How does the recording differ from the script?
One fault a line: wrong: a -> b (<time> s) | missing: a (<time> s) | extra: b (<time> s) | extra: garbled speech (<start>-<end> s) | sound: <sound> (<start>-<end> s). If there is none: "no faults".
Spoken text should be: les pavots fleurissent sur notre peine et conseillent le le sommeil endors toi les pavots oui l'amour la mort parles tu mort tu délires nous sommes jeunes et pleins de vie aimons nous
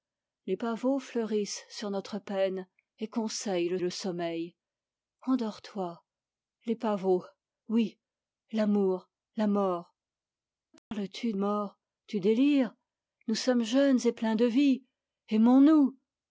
sound: dropout (10.8-10.9 s)